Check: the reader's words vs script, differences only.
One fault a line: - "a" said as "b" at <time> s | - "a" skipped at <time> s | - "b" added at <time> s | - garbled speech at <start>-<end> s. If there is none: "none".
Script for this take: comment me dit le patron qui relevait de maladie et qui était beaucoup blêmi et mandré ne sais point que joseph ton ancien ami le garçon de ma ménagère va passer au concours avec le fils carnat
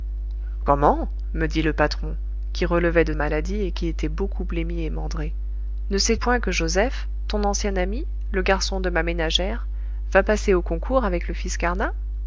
none